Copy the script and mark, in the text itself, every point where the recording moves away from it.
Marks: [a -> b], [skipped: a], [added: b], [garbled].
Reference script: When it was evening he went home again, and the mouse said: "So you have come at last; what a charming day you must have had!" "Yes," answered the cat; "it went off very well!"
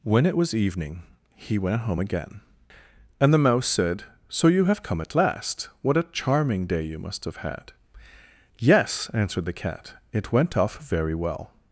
When it was evening he went home again, and the mouse said: "So you have come at last; what a charming day you must have had!" "Yes," answered the cat; "it went off very well!"